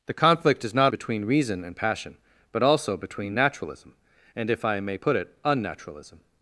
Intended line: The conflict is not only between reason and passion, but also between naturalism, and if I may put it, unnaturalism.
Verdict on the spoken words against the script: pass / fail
fail